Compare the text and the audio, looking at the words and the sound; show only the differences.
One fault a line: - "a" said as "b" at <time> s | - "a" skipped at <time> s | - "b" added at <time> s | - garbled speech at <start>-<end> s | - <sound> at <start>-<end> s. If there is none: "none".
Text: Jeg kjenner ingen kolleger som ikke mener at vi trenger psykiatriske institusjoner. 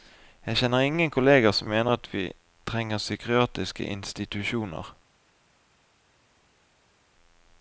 - "ikke" skipped at 1.7 s